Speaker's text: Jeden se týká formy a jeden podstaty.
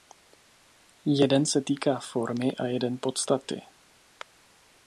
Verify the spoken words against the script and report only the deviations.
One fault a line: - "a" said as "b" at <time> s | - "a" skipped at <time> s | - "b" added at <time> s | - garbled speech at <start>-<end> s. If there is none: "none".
none